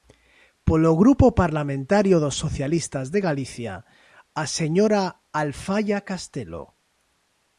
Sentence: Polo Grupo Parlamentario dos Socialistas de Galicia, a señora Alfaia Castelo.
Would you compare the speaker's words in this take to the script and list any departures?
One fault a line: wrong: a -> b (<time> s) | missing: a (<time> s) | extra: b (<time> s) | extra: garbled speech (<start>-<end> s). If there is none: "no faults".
no faults